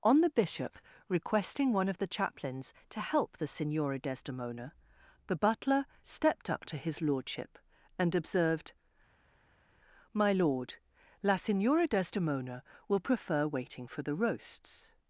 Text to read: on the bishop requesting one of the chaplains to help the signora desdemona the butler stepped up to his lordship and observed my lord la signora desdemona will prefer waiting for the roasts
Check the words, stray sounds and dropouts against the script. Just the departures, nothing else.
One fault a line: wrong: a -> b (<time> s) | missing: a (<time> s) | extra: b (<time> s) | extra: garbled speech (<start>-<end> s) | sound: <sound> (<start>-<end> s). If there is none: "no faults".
no faults